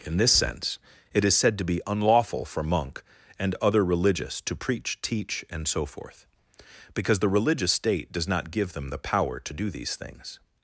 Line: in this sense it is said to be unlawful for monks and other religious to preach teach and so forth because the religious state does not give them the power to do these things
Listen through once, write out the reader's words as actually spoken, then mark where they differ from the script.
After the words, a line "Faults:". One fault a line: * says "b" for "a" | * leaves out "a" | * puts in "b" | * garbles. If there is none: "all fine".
in this sense it is said to be unlawful for monk and other religious to preach teach and so forth because the religious state does not give them the power to do these things
Faults:
* says "monk" for "monks"